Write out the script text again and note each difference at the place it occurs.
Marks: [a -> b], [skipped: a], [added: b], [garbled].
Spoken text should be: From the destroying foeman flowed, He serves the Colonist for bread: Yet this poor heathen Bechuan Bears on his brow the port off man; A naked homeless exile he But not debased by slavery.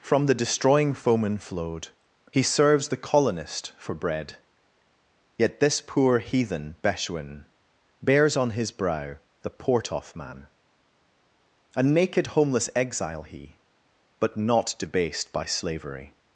From the destroying foeman flowed, He serves the Colonist for bread: Yet this poor heathen Bechuan Bears on his brow the port off man; A naked homeless exile he But not debased by slavery.